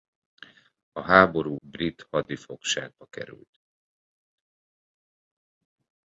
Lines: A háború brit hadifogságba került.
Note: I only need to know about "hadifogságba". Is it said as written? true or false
true